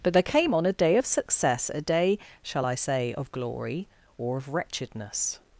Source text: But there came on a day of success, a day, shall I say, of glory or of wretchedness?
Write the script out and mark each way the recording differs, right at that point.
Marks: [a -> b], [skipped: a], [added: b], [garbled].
But there came on a day of success, a day, shall I say, of glory or of wretchedness?